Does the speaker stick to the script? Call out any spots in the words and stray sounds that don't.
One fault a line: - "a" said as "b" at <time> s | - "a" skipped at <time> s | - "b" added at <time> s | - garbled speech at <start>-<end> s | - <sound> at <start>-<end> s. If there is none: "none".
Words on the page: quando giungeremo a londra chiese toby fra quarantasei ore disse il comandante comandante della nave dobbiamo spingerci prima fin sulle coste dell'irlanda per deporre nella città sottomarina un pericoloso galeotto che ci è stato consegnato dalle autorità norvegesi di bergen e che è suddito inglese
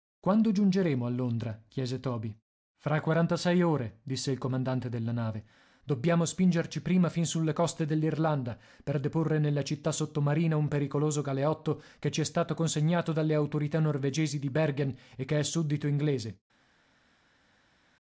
- "comandante" skipped at 4.9 s